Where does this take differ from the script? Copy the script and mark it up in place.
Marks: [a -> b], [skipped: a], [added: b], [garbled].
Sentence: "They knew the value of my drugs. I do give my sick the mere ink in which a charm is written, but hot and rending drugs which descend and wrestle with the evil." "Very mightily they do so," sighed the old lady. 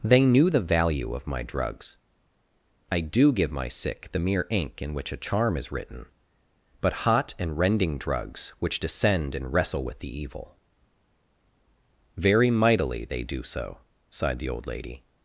"They knew the value of my drugs. I do give my sick the mere ink in which a charm is written, but hot and rending drugs which descend and wrestle with the evil." "Very mightily they do so," sighed the old lady.